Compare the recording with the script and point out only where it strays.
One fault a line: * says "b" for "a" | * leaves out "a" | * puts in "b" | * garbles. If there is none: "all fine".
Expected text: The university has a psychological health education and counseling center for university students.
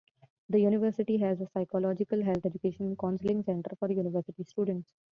all fine